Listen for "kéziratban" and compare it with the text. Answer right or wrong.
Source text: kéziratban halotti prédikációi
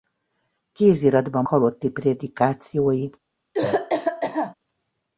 right